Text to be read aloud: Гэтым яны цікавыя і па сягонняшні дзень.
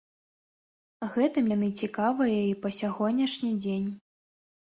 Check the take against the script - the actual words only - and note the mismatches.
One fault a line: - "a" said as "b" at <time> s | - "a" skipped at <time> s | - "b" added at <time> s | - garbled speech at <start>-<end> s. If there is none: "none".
none